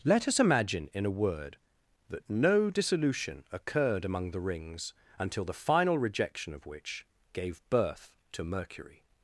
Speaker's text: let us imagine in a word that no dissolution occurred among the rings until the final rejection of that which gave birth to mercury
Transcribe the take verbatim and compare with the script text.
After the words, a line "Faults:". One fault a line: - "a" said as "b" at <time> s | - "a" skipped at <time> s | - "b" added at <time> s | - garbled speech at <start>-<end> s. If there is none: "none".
let us imagine in a word that no dissolution occurred among the rings until the final rejection of which gave birth to mercury
Faults:
- "that" skipped at 6.7 s